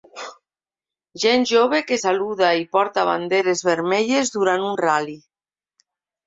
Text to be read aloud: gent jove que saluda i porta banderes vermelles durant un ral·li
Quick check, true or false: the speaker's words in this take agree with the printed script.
true